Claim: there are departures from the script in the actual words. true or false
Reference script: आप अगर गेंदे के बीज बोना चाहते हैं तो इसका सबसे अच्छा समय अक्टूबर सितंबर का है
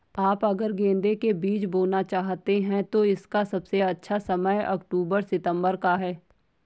false